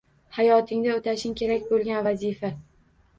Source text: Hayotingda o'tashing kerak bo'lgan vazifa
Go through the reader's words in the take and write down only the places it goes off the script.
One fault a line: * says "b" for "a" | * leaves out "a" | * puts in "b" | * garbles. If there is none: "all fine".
all fine